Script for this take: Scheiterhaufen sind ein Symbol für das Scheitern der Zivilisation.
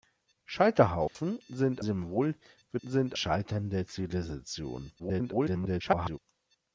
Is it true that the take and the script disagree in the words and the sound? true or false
true